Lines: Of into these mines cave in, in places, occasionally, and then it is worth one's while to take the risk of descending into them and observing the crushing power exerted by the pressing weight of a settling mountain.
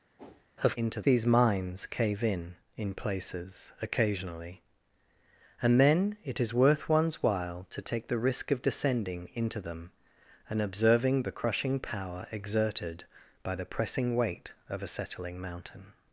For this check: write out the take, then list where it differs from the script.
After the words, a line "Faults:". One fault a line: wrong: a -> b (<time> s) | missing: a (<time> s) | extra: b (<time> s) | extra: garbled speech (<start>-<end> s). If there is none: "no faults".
Of into these mines cave in, in places, occasionally, and then it is worth one's while to take the risk of descending into them and observing the crushing power exerted by the pressing weight of a settling mountain.
Faults:
no faults